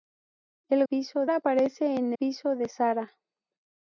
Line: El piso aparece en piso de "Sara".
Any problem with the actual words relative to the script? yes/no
no